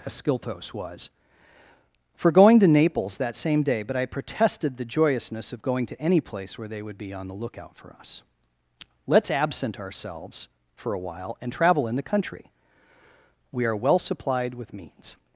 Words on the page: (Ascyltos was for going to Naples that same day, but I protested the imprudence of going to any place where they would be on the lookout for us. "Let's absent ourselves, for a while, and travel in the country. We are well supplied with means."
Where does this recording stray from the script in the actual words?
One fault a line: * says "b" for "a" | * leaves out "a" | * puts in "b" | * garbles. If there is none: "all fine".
* says "joyousness" for "imprudence"